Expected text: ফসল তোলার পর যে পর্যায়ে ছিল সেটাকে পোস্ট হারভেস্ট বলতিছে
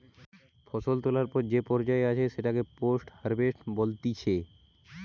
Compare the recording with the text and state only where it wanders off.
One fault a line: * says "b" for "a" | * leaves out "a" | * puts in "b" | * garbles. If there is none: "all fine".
* says "আছে" for "ছিল"